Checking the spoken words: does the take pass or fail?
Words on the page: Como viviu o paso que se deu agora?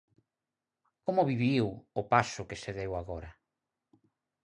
pass